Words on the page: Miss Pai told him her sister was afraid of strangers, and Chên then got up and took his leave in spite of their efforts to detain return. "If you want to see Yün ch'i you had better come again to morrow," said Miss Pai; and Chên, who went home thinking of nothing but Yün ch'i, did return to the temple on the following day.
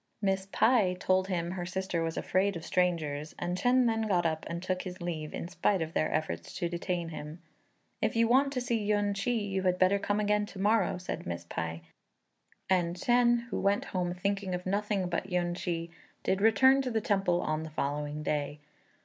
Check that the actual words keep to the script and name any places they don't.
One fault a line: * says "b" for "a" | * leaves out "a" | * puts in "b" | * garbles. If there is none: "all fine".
* says "him" for "return"